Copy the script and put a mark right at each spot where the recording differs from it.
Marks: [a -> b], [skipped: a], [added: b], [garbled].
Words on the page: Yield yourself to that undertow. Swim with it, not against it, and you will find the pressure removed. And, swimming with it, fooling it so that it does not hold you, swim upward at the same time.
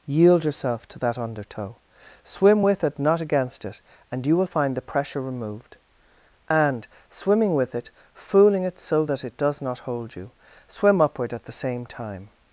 Yield yourself to that undertow. Swim with it, not against it, and you will find the pressure removed. And, swimming with it, fooling it so that it does not hold you, swim upward at the same time.